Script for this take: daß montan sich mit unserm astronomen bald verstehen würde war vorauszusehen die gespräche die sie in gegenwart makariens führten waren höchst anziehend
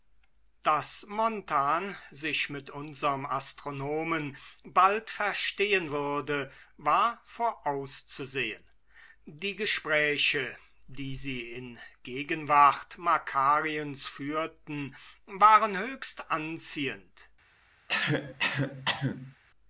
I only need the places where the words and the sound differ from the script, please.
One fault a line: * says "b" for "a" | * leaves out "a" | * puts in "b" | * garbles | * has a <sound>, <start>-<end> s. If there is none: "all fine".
* has a cough, 17.9-19.4 s